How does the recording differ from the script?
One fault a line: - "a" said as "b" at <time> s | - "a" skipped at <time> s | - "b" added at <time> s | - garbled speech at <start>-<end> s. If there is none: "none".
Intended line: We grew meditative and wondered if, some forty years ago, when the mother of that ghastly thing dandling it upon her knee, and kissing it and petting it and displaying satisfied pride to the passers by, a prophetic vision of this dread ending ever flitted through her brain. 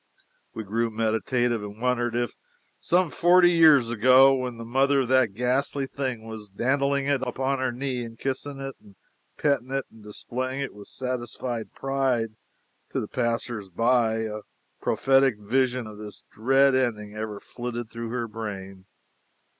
- "was" added at 6.2 s
- "it with" added at 10.6 s